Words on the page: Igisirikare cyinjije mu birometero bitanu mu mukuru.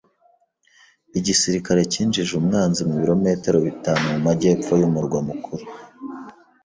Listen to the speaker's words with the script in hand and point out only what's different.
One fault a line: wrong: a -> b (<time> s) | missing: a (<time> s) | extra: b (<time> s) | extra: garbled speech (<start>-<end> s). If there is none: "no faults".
extra: umwanzi (2.4 s)
extra: majyepfo y'umurwa (4.3 s)